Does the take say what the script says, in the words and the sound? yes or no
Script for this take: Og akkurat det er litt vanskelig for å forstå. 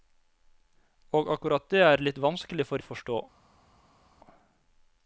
yes